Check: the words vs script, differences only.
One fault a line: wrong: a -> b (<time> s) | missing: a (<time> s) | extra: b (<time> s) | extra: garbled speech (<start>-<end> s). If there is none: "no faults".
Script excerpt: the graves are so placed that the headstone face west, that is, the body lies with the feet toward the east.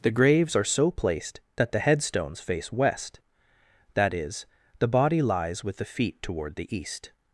wrong: headstone -> headstones (1.8 s)